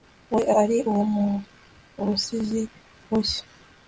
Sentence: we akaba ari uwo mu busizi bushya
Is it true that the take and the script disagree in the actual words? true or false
true